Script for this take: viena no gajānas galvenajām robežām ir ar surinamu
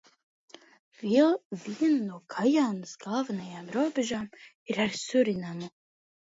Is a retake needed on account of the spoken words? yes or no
no